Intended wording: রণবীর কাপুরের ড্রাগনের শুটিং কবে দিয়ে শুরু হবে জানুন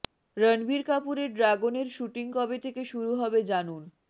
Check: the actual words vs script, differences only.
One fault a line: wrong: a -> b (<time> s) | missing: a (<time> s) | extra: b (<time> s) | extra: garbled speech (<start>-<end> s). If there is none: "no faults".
wrong: দিয়ে -> থেকে (2.6 s)